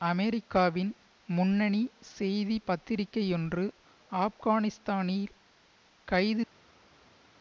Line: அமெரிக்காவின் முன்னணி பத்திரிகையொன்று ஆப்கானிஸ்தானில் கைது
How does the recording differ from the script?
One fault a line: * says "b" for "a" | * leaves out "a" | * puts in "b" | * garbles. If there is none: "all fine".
* puts in "செய்தி"